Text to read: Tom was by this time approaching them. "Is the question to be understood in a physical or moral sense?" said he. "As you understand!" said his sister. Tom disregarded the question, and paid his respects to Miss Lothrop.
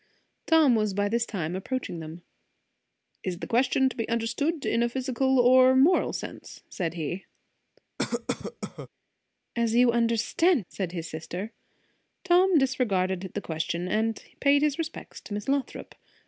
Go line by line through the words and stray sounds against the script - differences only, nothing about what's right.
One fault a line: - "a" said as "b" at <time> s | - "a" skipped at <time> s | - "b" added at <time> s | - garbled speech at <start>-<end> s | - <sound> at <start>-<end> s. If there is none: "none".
- cough at 8.0-8.9 s